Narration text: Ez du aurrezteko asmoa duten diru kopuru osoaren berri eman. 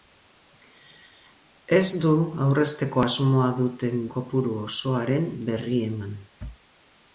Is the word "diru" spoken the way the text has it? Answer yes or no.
no